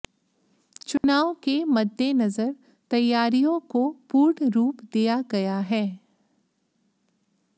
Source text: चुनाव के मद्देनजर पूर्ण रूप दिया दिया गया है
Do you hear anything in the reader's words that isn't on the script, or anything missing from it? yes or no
yes